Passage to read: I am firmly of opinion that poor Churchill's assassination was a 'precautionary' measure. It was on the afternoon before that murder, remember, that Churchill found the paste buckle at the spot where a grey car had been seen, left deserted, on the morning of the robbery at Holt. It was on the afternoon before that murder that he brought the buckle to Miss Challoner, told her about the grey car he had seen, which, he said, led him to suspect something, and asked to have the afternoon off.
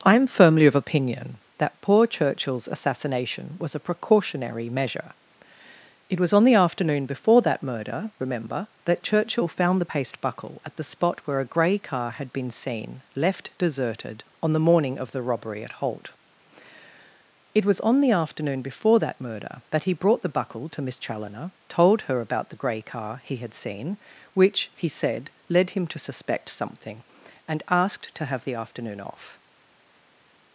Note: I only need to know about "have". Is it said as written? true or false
true